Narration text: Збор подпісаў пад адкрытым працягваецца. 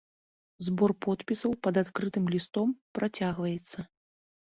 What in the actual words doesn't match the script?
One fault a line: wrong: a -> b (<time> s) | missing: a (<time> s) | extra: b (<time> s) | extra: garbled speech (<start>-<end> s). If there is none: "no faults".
extra: лістом (2.4 s)